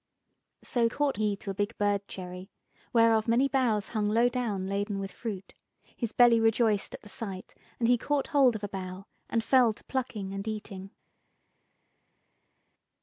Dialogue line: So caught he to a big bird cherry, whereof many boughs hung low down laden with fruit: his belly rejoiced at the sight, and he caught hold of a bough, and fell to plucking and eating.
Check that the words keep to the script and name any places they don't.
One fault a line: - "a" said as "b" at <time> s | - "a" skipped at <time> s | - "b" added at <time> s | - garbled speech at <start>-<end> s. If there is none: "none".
none